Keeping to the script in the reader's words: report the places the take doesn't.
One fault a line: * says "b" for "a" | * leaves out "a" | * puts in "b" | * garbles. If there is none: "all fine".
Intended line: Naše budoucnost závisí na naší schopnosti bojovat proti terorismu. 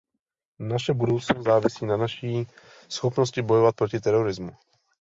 all fine